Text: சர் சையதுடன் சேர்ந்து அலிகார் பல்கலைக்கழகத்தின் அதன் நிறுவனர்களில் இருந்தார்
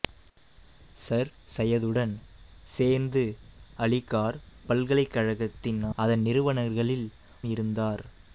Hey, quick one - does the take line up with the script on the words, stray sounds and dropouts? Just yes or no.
yes